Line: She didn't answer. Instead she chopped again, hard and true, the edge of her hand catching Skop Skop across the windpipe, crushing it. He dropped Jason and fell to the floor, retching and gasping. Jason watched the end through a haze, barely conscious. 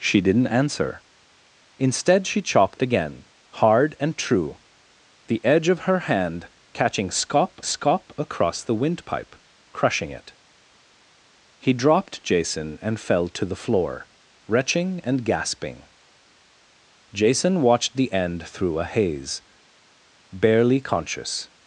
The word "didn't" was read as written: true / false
true